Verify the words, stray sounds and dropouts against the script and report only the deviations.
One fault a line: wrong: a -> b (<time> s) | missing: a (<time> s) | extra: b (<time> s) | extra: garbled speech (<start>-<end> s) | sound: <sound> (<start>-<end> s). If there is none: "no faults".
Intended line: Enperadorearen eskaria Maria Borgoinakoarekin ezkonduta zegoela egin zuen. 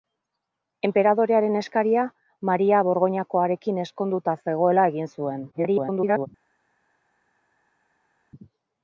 extra: garbled speech (5.5-6.3 s)